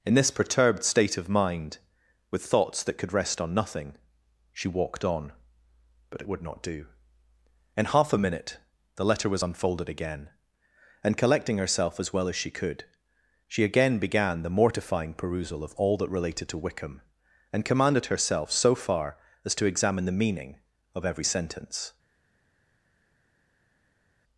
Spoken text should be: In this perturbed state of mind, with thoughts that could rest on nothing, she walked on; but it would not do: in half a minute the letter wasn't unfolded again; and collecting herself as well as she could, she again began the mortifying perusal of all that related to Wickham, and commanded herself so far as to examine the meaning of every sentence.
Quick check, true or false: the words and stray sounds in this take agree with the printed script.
false